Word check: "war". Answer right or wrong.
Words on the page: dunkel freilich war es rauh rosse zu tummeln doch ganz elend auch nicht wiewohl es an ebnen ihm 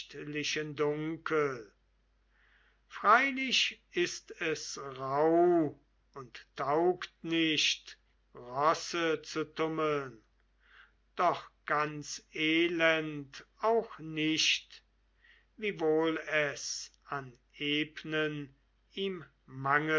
wrong